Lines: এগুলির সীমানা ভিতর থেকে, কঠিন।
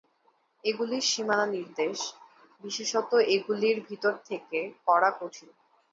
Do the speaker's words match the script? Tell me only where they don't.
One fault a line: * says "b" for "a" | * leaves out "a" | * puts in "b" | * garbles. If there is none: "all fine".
* puts in "নির্দেশ বিশেষত এগুলির"
* puts in "করা"